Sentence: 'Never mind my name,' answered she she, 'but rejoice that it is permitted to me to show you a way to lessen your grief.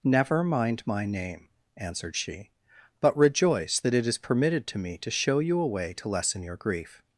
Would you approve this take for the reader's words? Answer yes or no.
no